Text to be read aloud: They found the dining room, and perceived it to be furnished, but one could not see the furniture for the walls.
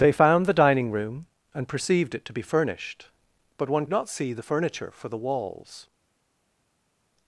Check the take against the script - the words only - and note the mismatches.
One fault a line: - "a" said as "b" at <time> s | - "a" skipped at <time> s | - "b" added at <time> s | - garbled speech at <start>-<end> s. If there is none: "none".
- "could" skipped at 3.9 s